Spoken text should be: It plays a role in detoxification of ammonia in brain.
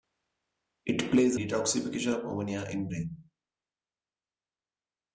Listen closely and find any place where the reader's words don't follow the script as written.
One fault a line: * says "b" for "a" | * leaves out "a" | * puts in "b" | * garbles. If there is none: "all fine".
* leaves out "a role in"